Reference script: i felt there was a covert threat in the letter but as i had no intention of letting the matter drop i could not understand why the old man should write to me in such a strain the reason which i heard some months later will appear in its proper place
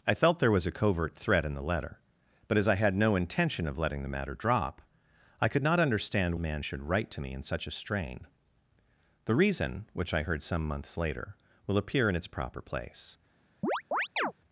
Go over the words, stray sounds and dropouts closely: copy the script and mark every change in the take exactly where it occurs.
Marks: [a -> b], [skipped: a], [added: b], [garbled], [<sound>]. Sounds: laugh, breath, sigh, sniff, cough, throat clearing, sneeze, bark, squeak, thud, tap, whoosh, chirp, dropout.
i felt there was a covert threat in the letter but as i had no intention of letting the matter drop i could not understand [skipped: why the old] man should write to me in such a strain the reason which i heard some months later will appear in its proper place [chirp]